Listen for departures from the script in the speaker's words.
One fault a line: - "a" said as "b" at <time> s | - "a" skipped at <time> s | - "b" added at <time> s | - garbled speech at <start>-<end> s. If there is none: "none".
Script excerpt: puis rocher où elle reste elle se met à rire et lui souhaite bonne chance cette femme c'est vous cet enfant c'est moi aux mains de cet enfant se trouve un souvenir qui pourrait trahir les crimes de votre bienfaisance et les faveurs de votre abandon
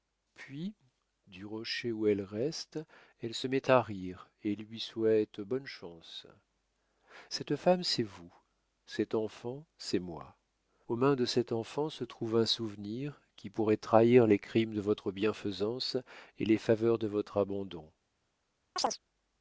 - "du" added at 1.3 s